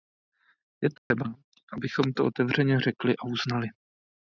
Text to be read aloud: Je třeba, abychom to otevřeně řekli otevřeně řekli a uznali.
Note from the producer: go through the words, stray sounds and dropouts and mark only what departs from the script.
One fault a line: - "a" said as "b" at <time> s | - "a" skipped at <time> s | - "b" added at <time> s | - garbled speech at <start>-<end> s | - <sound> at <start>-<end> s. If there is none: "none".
- dropout at 1.0-1.1 s
- "otevřeně řekli" skipped at 3.2 s